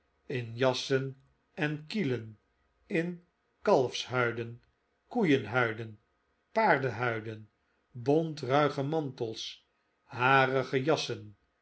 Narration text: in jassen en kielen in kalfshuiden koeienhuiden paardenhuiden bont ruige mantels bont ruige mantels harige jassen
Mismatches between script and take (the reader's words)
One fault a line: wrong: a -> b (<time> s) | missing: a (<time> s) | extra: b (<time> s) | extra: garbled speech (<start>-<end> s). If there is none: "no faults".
missing: bont ruige mantels (9.6 s)